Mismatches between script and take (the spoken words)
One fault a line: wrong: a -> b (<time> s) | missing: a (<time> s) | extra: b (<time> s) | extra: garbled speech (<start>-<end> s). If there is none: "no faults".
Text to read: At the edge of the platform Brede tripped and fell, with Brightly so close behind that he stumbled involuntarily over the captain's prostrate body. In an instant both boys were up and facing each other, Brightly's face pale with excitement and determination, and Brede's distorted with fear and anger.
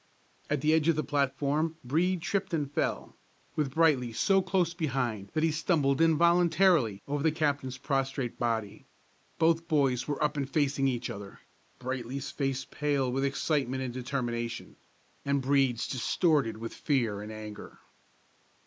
missing: In an instant (8.9 s)